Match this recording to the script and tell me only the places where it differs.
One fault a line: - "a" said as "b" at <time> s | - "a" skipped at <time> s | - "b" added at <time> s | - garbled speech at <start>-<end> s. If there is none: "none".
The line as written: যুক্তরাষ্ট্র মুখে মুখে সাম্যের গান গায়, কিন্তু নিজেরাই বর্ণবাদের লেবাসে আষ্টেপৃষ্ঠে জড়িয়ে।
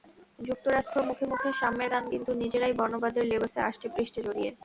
- "গায়" skipped at 2.0 s